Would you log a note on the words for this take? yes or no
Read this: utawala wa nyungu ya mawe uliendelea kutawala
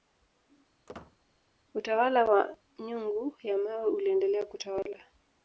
no